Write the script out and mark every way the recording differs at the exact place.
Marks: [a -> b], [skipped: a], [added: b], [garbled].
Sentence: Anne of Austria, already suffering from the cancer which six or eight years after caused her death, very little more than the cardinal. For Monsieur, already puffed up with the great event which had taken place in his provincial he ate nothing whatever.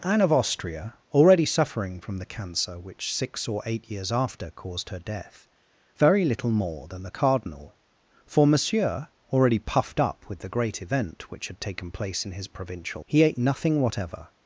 Anne of Austria, already suffering from the cancer which six or eight years after caused her death, very little more than the cardinal. For Monsieur, already puffed up with the great event which had taken place in his provincial he ate nothing whatever.